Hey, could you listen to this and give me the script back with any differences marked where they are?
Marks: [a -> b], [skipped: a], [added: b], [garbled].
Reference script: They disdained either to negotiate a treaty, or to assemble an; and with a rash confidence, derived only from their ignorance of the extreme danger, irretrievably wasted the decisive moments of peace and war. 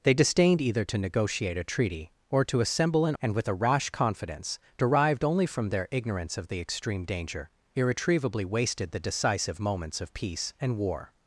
They disdained either to negotiate a treaty, or to assemble an; and with a rash confidence, derived only from their ignorance of the extreme danger, irretrievably wasted the decisive moments of peace and war.